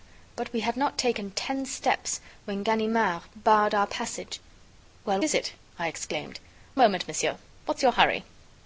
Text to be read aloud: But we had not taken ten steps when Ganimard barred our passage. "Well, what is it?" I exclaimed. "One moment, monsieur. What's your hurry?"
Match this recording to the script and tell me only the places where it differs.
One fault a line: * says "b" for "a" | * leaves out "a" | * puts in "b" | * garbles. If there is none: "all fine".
* leaves out "what"
* leaves out "One"